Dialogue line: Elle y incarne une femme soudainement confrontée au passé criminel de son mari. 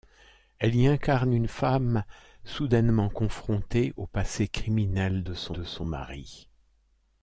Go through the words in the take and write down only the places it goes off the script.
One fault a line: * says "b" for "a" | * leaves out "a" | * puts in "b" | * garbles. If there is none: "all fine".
* puts in "de son"